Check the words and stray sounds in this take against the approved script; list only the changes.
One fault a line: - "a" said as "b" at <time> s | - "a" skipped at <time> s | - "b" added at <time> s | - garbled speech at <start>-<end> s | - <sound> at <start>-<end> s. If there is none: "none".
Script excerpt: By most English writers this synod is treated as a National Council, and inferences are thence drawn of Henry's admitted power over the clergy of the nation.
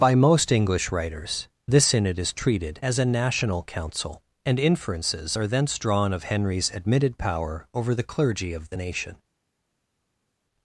none